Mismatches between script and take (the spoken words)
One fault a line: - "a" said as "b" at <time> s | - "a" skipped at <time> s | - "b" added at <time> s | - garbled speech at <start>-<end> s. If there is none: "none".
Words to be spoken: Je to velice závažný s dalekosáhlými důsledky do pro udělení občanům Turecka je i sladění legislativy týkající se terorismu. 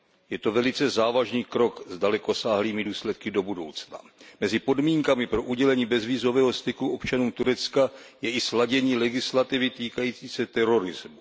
- "krok" added at 1.4 s
- "budoucna Mezi podmínkami" added at 3.4 s
- "bezvízového styku" added at 5.9 s